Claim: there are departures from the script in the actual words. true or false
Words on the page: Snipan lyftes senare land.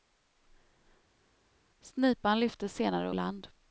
false